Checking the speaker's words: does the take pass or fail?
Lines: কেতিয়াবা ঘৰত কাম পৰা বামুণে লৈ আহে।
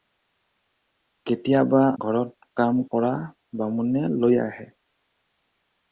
pass